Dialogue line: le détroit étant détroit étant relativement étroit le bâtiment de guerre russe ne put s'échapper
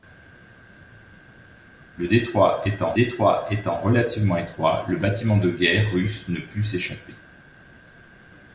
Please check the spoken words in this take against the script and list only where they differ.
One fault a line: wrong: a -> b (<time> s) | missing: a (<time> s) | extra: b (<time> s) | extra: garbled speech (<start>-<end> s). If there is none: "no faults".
no faults